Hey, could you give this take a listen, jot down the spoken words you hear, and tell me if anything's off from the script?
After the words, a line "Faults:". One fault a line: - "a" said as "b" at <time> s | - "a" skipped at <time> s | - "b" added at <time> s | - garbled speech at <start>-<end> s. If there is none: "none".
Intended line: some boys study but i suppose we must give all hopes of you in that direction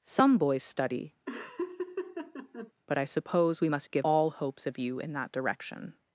some boys study but i suppose we must give all hopes of you in that direction
Faults:
none